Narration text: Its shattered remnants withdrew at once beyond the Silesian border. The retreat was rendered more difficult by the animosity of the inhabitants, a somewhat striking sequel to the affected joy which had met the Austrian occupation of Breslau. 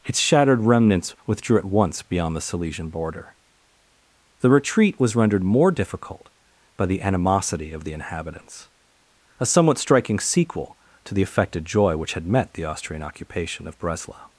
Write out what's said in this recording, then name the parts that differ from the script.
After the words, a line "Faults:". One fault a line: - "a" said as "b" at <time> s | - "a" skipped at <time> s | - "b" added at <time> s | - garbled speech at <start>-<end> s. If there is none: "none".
Its shattered remnants withdrew at once beyond the Silesian border. The retreat was rendered more difficult by the animosity of the inhabitants, a somewhat striking sequel to the affected joy which had met the Austrian occupation of Breslau.
Faults:
none